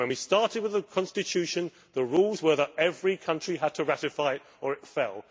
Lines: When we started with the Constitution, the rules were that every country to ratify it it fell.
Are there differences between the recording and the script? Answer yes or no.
yes